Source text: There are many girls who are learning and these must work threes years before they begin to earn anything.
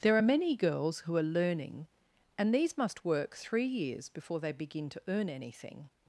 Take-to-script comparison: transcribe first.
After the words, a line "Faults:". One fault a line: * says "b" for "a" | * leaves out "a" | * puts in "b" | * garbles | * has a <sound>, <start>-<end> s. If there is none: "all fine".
There are many girls who are learning and these must work three years before they begin to earn anything.
Faults:
* says "three" for "threes"